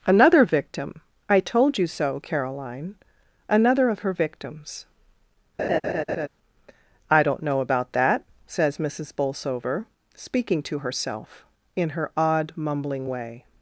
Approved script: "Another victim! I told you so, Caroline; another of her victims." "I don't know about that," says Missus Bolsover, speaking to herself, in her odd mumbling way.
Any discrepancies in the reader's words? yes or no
no